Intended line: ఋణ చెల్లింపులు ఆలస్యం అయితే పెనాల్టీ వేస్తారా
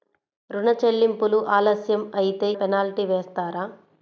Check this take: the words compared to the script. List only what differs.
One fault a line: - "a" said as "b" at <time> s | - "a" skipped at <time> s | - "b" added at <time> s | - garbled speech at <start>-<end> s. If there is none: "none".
none